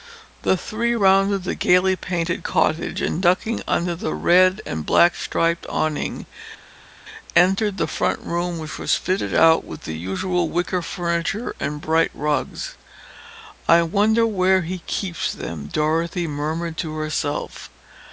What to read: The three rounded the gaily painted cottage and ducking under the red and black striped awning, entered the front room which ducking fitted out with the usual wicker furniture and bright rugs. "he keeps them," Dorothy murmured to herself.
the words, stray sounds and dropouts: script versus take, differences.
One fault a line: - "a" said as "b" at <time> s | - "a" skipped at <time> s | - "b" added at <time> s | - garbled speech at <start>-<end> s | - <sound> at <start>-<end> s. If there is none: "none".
- "ducking" said as "was" at 8.8 s
- "I wonder where" added at 13.7 s